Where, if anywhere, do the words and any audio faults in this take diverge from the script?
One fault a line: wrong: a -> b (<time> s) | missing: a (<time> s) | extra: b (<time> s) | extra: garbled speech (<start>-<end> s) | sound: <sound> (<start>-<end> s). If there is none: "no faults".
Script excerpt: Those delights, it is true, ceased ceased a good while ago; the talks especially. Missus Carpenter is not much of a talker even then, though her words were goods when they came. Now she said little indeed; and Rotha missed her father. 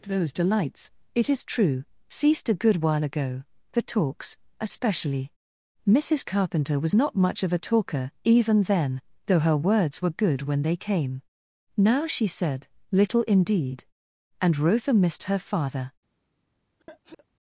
missing: ceased (2.5 s)
wrong: is -> was (6.8 s)
wrong: goods -> good (10.2 s)
sound: sneeze (16.8-17.3 s)